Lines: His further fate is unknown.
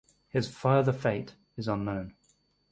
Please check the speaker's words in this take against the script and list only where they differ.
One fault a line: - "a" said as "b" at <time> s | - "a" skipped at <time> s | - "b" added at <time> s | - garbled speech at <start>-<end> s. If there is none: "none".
none